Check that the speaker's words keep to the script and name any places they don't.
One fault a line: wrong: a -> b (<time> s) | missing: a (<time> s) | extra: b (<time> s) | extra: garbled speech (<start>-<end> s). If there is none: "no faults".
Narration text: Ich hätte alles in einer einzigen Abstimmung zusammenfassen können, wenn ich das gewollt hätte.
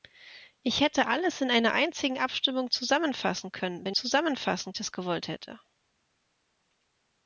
wrong: ich -> zusammenfassen (3.9 s)